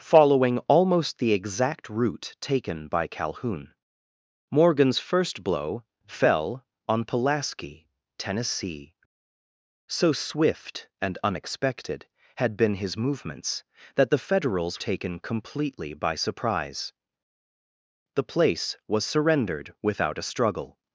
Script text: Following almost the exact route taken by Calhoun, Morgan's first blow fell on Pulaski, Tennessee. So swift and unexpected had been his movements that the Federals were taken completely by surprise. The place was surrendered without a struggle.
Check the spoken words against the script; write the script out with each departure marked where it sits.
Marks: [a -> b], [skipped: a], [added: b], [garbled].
Following almost the exact route taken by Calhoun, Morgan's first blow fell on Pulaski, Tennessee. So swift and unexpected had been his movements that the Federals [skipped: were] taken completely by surprise. The place was surrendered without a struggle.